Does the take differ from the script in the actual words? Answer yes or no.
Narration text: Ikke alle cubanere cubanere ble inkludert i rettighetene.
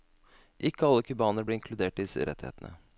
yes